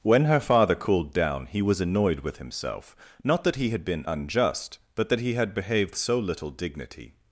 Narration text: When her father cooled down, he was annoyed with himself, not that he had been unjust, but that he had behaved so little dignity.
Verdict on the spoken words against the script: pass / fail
pass